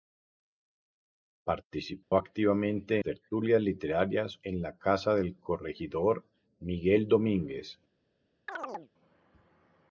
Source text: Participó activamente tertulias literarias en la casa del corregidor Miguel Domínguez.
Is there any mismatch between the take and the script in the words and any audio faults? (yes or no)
yes